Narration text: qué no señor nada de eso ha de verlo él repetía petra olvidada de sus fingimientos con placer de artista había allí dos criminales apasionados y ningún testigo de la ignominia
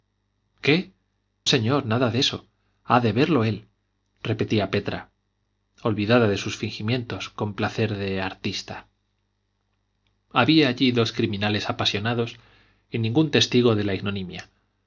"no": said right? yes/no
no